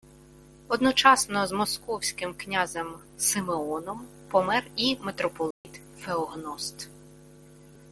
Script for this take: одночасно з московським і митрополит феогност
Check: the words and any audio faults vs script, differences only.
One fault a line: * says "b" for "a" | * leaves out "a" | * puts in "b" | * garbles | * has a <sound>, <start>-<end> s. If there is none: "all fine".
* puts in "князем симеоном помер"
* has a dropout, 5.5-5.6 s